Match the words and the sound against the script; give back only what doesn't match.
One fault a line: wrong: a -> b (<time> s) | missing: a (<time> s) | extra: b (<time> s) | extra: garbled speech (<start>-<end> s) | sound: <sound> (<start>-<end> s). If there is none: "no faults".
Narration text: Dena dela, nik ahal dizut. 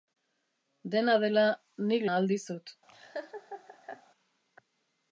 sound: laugh (2.9-4.0 s)